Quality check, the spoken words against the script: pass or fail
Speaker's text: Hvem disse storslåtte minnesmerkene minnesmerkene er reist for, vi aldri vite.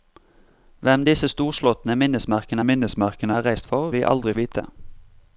pass